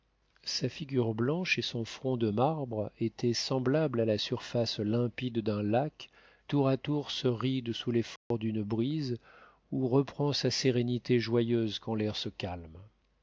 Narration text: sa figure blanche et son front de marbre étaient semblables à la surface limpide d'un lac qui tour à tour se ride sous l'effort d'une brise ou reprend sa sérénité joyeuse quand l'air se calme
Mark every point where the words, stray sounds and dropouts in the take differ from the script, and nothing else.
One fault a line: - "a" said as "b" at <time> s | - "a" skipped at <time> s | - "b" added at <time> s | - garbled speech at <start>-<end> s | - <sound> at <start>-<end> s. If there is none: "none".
- "qui" skipped at 6.1 s
- dropout at 8.2-8.3 s